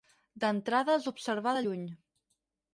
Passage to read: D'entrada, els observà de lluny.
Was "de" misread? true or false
false